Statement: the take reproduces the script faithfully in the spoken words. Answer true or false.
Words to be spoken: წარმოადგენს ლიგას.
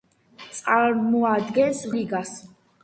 true